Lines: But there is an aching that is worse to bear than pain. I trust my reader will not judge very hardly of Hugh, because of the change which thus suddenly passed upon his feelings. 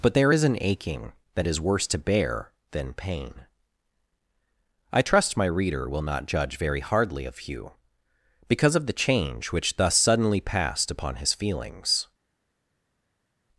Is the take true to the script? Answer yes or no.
yes